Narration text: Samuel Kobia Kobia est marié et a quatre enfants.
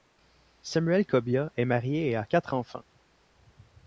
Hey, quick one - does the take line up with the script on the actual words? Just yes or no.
no